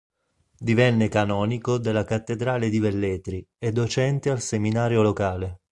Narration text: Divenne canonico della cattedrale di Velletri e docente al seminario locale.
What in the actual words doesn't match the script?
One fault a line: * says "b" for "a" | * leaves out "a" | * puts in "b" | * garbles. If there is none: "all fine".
all fine